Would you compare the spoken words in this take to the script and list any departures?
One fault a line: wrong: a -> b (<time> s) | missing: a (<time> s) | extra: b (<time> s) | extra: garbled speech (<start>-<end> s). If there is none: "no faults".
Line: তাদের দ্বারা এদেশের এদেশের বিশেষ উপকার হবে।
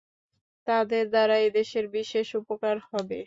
missing: এদেশের (1.9 s)